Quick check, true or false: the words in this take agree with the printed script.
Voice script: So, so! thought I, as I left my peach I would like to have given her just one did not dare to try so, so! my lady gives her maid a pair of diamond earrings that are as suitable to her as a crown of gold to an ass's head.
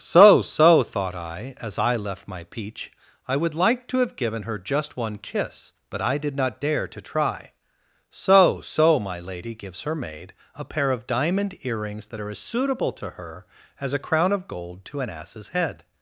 false